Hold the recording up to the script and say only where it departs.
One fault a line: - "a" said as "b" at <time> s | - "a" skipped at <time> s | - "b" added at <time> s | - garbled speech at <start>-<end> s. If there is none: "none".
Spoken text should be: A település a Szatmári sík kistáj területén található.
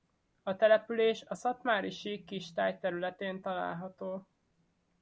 none